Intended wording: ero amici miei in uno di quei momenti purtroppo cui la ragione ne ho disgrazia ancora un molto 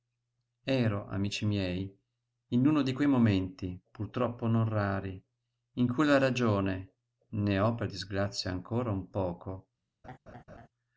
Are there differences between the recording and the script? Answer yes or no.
yes